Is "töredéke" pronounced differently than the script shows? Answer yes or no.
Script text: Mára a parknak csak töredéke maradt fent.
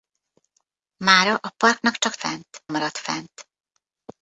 yes